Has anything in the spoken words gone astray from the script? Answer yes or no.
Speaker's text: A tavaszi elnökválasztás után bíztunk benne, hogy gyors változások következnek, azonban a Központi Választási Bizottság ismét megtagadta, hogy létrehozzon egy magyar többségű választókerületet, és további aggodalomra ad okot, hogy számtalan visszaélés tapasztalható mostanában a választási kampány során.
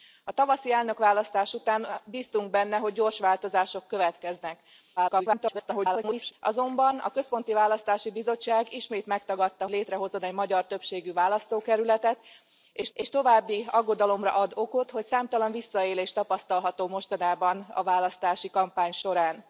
yes